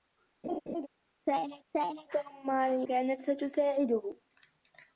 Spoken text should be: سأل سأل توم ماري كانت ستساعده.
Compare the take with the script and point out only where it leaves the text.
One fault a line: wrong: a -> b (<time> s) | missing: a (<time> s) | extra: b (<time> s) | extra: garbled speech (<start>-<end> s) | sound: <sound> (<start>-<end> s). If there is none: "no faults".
sound: laugh (0.4-0.9 s)